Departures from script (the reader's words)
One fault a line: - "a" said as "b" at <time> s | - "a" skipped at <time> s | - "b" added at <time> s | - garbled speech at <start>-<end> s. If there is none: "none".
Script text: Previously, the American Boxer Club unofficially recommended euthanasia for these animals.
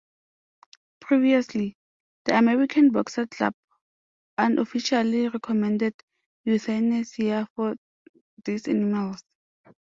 none